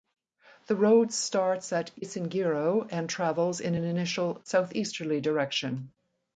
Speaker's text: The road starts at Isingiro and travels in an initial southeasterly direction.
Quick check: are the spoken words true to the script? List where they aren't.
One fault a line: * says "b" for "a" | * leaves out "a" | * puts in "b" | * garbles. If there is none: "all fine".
all fine